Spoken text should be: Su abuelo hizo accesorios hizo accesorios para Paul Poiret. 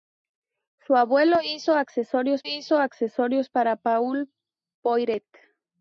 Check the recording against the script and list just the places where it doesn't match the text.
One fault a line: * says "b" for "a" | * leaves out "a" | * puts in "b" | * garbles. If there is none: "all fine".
all fine